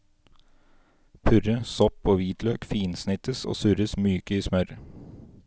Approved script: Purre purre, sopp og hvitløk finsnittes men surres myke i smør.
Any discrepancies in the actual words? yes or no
yes